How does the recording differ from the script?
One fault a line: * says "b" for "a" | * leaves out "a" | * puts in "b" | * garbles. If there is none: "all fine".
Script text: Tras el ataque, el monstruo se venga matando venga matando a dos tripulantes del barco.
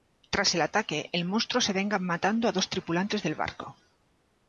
* leaves out "venga matando"